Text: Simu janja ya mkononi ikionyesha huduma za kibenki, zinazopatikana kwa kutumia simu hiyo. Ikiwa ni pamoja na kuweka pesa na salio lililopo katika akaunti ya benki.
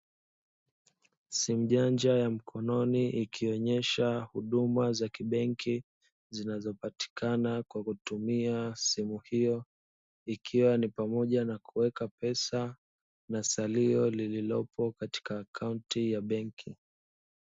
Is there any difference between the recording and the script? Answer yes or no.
no